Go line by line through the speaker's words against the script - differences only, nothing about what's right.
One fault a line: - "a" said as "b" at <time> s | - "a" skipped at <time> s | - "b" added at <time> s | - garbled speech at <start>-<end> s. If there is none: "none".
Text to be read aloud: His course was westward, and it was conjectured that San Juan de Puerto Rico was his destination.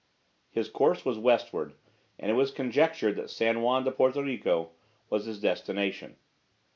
none